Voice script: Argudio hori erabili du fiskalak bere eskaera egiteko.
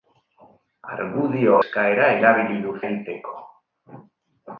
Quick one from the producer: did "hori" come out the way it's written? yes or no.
no